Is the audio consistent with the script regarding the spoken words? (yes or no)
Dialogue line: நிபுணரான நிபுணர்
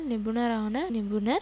yes